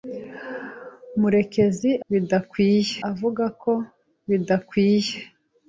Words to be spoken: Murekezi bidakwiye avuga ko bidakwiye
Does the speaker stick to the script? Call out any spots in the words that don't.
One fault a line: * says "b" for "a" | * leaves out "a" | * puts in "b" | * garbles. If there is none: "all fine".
all fine